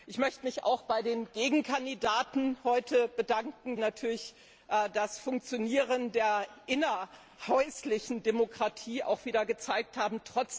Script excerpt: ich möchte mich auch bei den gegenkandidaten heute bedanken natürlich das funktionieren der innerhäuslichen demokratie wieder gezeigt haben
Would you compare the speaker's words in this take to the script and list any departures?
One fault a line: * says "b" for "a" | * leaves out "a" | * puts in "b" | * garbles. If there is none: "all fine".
all fine